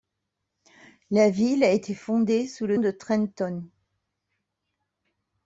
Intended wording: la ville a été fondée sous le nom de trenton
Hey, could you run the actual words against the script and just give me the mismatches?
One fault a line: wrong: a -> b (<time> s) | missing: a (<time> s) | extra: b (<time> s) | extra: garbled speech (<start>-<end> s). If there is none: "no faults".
missing: nom (2.8 s)